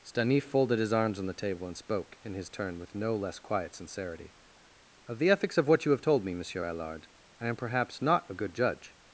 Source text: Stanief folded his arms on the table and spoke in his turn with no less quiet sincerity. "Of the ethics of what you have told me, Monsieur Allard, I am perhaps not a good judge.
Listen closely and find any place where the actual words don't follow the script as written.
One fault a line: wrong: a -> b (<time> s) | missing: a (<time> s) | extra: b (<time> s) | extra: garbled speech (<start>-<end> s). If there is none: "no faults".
no faults